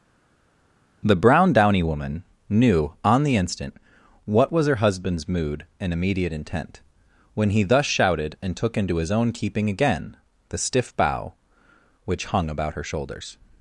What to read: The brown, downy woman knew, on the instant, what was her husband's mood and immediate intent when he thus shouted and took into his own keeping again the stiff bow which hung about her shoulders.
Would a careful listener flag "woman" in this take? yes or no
no